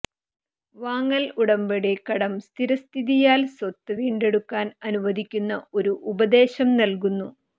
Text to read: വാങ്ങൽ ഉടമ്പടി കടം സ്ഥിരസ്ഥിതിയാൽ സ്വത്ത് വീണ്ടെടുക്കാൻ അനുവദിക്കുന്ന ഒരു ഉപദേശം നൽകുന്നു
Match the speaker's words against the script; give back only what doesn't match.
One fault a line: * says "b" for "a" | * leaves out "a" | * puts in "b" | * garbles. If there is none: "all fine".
all fine